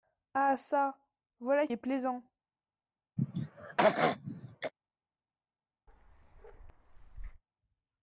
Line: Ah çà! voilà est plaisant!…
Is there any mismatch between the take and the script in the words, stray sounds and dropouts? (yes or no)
yes